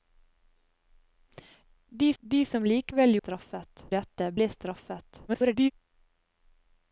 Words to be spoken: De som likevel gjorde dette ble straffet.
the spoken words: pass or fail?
fail